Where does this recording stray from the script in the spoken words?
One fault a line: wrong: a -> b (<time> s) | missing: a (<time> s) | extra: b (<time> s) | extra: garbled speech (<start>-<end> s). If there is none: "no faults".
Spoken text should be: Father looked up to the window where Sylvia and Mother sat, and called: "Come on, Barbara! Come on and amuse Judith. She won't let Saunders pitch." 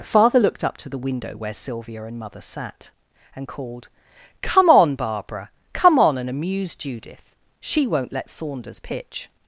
no faults